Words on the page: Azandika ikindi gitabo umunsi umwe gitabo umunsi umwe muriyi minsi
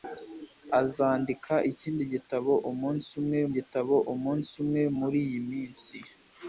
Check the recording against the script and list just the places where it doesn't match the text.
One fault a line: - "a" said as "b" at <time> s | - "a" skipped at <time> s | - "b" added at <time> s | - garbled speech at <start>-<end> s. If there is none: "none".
none